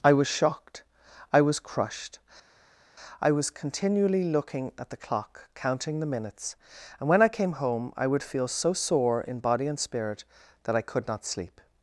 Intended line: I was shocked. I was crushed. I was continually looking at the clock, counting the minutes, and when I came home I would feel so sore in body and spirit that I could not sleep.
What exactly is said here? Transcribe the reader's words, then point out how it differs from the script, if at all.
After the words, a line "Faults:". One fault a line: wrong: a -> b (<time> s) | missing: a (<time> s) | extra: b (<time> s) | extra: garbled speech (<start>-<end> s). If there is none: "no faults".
I was shocked. I was crushed. I was continually looking at the clock, counting the minutes, and when I came home I would feel so sore in body and spirit that I could not sleep.
Faults:
no faults